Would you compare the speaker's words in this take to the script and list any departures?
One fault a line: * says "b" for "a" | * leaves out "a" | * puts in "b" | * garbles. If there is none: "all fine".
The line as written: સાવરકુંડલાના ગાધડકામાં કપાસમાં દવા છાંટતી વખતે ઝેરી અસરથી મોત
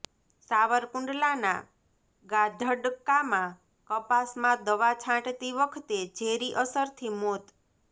all fine